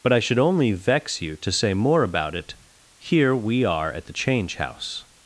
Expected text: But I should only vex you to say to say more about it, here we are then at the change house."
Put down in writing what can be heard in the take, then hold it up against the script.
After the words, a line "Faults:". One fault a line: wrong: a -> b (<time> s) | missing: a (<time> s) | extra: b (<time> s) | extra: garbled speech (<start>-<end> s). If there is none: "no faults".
But I should only vex you to say more about it, here we are at the change house."
Faults:
missing: to say (1.7 s)
missing: then (3.9 s)